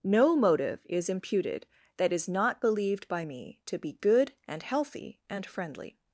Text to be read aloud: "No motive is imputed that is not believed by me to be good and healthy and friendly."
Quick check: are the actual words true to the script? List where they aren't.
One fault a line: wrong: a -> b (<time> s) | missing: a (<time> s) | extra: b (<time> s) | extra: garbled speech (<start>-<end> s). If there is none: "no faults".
no faults